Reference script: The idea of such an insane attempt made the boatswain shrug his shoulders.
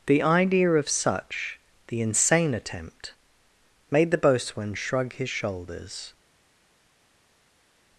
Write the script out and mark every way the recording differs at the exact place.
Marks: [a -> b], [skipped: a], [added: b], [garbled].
The idea of such [an -> the] insane attempt made the boatswain shrug his shoulders.